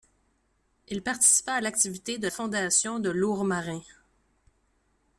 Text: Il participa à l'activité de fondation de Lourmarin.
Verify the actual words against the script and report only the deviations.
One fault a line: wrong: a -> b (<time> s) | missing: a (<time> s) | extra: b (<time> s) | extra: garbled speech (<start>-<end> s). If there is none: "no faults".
no faults